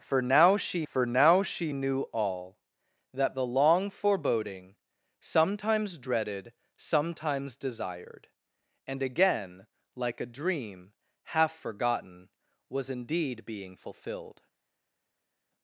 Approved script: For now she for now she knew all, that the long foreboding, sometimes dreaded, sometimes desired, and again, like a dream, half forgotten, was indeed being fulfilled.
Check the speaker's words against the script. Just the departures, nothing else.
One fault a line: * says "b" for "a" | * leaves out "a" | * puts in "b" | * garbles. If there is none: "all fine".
all fine